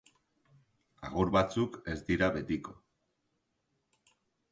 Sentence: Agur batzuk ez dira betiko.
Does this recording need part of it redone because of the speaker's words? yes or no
no